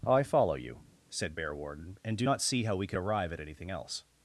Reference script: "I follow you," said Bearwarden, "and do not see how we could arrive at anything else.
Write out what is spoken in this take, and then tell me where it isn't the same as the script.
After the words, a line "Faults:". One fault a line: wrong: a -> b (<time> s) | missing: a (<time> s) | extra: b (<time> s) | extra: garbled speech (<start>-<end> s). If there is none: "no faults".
"I follow you," said Bearwarden, "and do not see how we could arrive at anything else.
Faults:
no faults